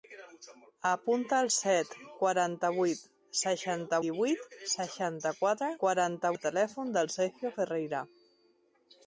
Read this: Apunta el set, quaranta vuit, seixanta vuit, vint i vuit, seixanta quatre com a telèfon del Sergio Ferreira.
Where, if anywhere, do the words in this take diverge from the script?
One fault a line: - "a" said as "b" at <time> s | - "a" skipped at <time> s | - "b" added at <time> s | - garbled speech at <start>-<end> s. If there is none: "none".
- "vuit vint" skipped at 4.0 s
- "com" said as "quaranta" at 5.8 s